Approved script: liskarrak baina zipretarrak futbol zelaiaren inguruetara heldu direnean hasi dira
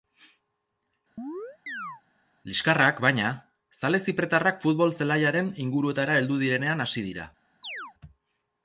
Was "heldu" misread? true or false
false